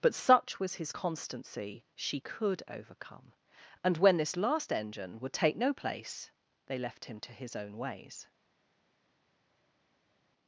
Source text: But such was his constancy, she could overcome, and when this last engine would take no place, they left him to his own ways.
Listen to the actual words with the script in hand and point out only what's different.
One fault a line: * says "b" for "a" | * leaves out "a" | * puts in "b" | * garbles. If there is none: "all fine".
all fine